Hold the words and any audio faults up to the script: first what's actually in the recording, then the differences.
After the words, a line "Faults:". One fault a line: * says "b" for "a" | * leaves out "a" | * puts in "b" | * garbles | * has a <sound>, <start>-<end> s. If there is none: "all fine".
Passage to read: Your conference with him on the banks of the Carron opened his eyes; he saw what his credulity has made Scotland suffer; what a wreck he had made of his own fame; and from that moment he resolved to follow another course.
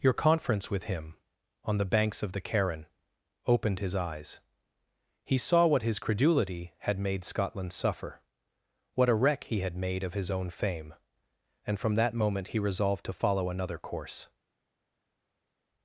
Your conference with him on the banks of the Carron opened his eyes; he saw what his credulity had made Scotland suffer; what a wreck he had made of his own fame; and from that moment he resolved to follow another course.
Faults:
* says "had" for "has"